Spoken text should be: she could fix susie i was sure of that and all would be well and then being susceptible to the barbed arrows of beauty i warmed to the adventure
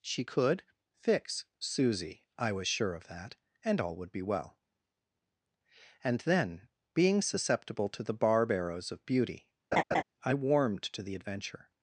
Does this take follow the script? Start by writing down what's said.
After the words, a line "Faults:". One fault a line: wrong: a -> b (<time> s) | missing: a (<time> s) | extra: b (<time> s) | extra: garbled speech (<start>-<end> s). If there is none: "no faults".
she could fix susie i was sure of that and all would be well and then being susceptible to the barb arrows of beauty i warmed to the adventure
Faults:
wrong: barbed -> barb (8.1 s)